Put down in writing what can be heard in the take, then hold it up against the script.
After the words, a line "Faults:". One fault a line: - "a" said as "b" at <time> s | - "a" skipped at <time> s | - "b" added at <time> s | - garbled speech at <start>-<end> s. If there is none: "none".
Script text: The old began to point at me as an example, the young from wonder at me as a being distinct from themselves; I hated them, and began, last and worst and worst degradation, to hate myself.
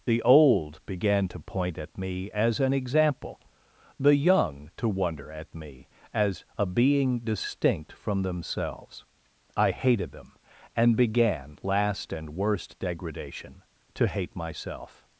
The old began to point at me as an example, the young to wonder at me as a being distinct from themselves; I hated them, and began, last and worst degradation, to hate myself.
Faults:
- "from" said as "to" at 4.8 s
- "and worst" skipped at 12.8 s